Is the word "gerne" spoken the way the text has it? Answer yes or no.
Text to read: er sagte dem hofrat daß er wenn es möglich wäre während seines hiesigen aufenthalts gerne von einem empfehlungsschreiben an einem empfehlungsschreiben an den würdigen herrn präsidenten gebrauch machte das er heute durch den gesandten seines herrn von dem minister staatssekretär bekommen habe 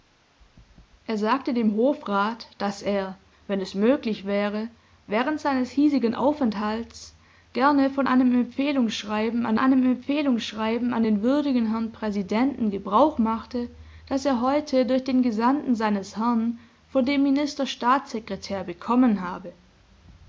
yes